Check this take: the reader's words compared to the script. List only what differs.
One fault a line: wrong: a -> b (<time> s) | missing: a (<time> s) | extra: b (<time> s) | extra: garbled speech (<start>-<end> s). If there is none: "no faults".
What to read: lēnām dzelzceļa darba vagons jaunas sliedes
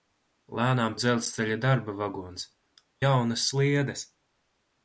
no faults